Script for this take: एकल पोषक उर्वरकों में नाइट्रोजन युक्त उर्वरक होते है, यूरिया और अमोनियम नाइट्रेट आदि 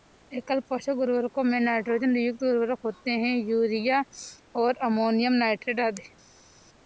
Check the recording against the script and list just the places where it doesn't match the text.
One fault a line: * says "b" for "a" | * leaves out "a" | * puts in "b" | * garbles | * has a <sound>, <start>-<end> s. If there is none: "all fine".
all fine